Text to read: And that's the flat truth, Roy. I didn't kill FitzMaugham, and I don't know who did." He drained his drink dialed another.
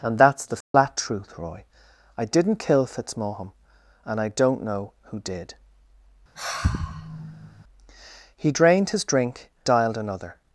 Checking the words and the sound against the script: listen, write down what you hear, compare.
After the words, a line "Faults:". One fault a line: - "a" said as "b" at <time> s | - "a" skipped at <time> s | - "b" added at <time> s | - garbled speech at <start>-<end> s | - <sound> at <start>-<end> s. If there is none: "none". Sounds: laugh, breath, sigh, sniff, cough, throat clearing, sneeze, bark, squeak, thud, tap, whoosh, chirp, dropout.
And that's the flat truth, Roy. I didn't kill FitzMaugham, and I don't know who did." He drained his drink dialed another.
Faults:
- dropout at 0.6-0.7 s
- sigh at 6.4-7.6 s